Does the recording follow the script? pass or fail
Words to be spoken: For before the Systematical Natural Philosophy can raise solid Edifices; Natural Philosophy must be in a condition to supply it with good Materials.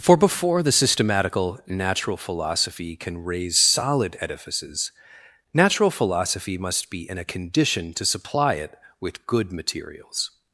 pass